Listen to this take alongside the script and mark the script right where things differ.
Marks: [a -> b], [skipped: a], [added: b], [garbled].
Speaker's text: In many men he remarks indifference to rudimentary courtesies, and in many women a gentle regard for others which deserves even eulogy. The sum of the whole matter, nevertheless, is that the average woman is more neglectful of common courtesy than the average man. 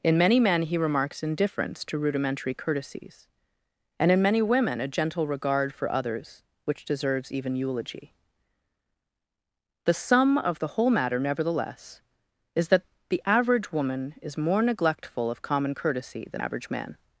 In many men he remarks indifference to rudimentary courtesies, and in many women a gentle regard for others which deserves even eulogy. The sum of the whole matter, nevertheless, is that the average woman is more neglectful of common courtesy than [skipped: the] average man.